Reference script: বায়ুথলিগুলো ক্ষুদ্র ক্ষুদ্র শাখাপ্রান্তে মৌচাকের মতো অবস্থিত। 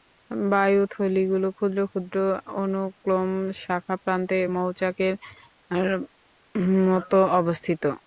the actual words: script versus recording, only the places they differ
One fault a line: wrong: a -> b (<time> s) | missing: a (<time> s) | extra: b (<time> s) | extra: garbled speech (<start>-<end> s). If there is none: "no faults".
extra: অনুক্লোম (2.6 s)